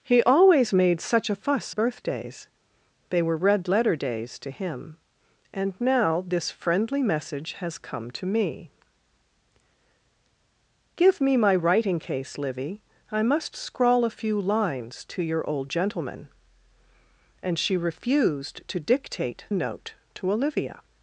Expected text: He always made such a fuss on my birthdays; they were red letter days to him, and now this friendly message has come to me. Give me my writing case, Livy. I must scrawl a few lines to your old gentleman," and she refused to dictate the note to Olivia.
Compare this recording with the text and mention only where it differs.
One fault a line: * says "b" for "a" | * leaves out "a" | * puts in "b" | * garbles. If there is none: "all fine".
* leaves out "on my"
* leaves out "the"